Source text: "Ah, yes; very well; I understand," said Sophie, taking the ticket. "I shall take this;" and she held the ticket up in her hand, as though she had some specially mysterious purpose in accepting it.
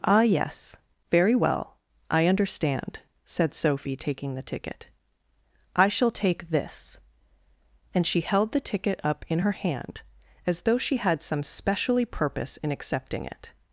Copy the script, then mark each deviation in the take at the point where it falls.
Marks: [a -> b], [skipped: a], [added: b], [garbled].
"Ah, yes; very well; I understand," said Sophie, taking the ticket. "I shall take this;" and she held the ticket up in her hand, as though she had some specially [skipped: mysterious] purpose in accepting it.